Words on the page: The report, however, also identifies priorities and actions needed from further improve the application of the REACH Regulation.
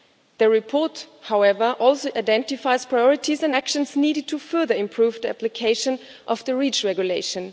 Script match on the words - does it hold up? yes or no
no